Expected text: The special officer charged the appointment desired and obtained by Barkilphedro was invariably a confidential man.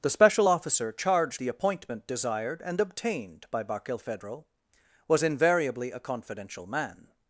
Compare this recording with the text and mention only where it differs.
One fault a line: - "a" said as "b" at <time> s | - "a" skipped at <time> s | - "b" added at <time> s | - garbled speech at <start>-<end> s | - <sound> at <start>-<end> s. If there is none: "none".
none